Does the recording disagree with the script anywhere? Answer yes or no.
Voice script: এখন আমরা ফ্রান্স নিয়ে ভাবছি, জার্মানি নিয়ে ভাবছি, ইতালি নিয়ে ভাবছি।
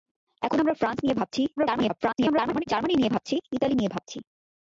yes